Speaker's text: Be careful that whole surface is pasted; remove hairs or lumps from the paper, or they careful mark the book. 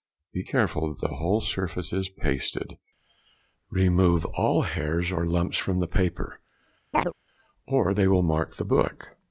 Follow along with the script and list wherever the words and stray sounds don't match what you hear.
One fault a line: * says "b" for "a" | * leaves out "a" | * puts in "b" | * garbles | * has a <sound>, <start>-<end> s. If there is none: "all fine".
* puts in "the"
* puts in "all"
* has a chirp, 6.9-7.1 s
* says "will" for "careful"